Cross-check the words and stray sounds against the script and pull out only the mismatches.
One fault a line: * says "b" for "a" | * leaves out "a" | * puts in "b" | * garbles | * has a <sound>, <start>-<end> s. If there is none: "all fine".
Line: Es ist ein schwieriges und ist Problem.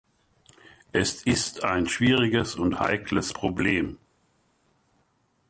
* says "heikles" for "ist"